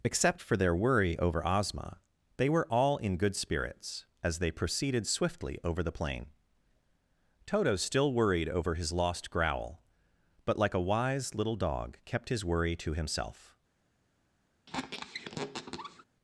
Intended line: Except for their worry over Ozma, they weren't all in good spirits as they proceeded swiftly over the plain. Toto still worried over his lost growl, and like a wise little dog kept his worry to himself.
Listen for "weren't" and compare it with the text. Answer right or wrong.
wrong